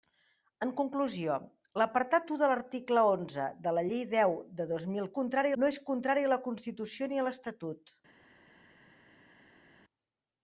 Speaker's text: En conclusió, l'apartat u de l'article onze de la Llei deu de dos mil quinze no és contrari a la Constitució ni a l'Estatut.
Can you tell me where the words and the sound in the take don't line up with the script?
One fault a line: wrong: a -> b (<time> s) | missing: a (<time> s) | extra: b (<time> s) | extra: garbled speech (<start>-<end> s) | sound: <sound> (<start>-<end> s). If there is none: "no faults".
wrong: quinze -> contrari (5.2 s)